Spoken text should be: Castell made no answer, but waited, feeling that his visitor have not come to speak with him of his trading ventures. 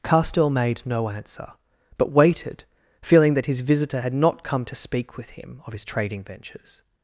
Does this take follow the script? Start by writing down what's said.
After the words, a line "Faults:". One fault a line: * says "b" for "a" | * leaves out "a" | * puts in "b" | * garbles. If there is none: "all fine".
Castell made no answer, but waited, feeling that his visitor had not come to speak with him of his trading ventures.
Faults:
* says "had" for "have"